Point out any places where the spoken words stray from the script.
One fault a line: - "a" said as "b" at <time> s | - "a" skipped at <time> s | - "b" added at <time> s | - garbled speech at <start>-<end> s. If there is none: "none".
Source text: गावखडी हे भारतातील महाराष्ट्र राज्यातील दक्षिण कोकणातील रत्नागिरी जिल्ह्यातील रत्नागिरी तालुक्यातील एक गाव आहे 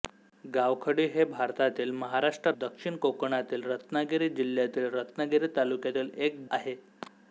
- "राज्यातील" skipped at 2.5 s
- "गाव" skipped at 6.4 s